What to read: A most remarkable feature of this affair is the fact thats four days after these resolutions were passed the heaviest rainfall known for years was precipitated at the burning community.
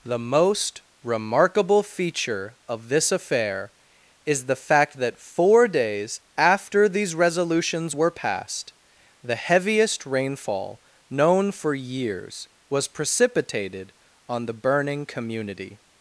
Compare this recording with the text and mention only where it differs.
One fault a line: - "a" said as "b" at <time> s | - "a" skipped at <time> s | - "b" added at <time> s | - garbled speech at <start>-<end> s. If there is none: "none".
- "A" said as "The" at 0.1 s
- "thats" said as "that" at 5.0 s
- "at" said as "on" at 14.3 s